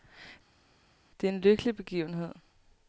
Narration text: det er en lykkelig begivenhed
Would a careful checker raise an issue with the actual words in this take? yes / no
no